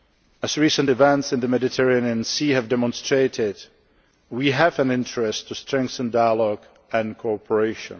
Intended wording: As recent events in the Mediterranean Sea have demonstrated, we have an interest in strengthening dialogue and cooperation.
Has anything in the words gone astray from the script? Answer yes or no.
no